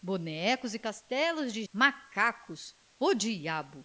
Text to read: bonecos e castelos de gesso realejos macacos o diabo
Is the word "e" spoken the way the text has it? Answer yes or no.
yes